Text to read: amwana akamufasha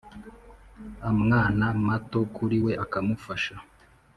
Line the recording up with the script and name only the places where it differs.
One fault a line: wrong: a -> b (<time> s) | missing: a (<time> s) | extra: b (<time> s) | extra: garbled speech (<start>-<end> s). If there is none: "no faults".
extra: mato kuri we (1.9 s)